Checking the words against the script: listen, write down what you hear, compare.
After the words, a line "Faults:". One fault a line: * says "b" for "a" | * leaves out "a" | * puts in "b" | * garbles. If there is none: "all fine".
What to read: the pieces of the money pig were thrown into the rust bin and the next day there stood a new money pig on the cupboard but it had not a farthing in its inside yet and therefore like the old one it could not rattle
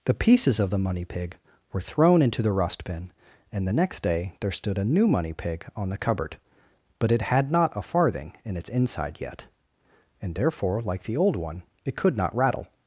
the pieces of the money pig were thrown into the rust bin and the next day there stood a new money pig on the cupboard but it had not a farthing in its inside yet and therefore like the old one it could not rattle
Faults:
all fine